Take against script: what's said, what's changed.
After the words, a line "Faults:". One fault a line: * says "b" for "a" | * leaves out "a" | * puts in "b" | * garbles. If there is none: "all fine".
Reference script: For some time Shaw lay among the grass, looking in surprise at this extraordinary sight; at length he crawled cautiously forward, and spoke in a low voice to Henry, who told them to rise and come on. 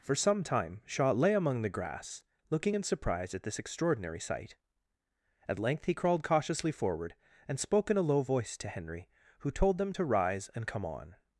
For some time Shaw lay among the grass, looking in surprise at this extraordinary sight; at length he crawled cautiously forward, and spoke in a low voice to Henry, who told them to rise and come on.
Faults:
all fine